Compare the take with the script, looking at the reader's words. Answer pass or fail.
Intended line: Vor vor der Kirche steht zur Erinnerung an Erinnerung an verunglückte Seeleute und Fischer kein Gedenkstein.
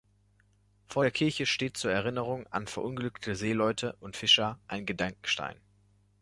fail